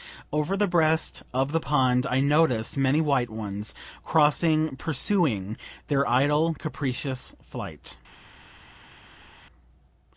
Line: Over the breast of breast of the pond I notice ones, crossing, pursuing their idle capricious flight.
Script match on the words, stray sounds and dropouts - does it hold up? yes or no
no